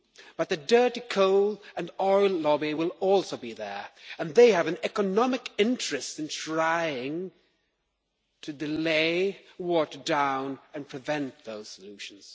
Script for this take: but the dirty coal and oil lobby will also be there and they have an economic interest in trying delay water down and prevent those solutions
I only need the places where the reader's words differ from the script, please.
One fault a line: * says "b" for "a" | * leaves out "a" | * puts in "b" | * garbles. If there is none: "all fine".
* puts in "to"